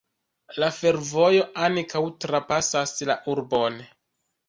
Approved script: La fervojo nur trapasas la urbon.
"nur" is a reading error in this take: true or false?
true